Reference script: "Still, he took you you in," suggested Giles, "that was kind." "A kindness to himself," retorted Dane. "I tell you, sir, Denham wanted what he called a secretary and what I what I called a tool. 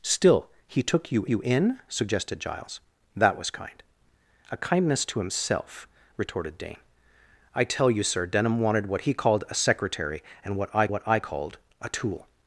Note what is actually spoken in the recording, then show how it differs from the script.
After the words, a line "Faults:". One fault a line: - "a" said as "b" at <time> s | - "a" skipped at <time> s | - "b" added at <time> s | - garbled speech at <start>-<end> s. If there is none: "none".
"Still, he took you you in," suggested Giles, "that was kind." "A kindness to himself," retorted Dane. "I tell you, sir, Denham wanted what he called a secretary and what I what I called a tool.
Faults:
none